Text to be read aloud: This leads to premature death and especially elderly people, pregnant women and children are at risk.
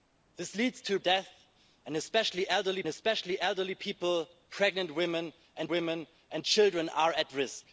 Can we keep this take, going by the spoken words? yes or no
no